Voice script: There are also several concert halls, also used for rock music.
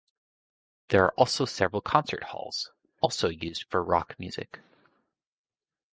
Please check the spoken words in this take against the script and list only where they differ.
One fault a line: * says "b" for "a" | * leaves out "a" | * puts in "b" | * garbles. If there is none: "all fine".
all fine